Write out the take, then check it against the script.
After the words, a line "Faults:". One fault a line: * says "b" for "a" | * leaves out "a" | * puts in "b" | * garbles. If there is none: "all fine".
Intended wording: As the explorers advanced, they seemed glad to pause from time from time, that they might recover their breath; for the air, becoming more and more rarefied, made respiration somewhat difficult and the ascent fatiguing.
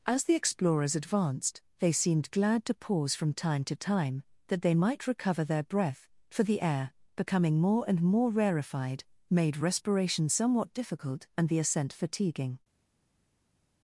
As the explorers advanced, they seemed glad to pause from time to time, that they might recover their breath; for the air, becoming more and more rarefied, made respiration somewhat difficult and the ascent fatiguing.
Faults:
* says "to" for "from"